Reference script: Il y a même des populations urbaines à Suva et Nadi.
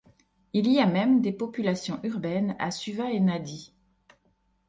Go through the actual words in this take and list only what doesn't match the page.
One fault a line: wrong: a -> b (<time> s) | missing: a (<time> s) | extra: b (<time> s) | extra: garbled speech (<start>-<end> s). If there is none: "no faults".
no faults